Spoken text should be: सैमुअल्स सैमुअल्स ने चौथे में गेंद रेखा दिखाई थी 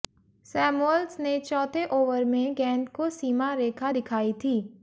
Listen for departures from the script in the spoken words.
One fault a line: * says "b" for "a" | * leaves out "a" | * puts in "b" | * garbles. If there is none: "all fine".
* leaves out "सैमुअल्स"
* puts in "ओवर"
* puts in "को सीमा"